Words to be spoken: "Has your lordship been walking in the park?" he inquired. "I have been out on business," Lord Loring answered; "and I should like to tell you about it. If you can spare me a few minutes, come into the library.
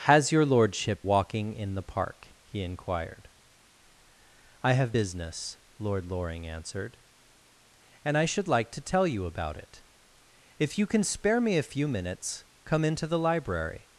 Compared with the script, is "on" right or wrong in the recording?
wrong